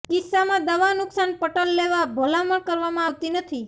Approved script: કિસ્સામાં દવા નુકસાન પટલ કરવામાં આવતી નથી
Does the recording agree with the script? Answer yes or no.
no